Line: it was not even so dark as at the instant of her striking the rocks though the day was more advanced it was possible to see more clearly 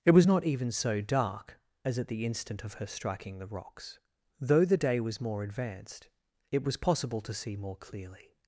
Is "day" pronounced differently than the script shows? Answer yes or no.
no